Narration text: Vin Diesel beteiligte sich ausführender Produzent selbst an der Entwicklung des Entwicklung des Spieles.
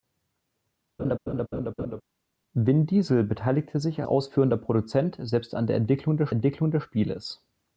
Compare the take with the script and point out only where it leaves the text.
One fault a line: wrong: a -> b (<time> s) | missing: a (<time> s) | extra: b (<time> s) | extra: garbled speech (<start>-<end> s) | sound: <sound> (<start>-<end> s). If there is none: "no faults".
sound: laugh (1.0-2.0 s)